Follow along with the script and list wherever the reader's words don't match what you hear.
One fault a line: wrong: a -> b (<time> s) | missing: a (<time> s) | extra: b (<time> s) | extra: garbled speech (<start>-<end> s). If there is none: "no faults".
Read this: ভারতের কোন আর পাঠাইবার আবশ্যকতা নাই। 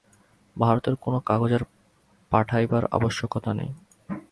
extra: কাগজ (1.2 s)